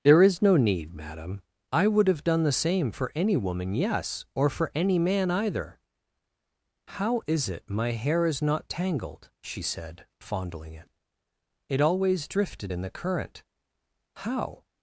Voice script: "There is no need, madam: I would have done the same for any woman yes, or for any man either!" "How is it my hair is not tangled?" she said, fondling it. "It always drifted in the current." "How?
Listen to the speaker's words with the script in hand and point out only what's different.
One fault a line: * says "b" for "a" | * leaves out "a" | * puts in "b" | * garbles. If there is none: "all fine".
all fine